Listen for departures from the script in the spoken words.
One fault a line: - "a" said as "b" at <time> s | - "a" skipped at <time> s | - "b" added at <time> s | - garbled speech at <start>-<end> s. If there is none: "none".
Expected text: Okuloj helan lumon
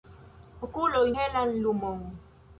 none